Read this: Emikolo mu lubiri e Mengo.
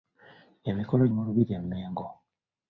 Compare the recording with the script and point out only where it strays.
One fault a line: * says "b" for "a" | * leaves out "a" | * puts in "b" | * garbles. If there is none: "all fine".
all fine